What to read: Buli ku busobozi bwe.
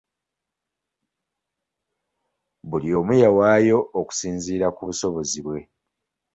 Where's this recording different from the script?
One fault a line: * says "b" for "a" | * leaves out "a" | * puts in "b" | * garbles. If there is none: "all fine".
* puts in "omu yawaayo okusinziira"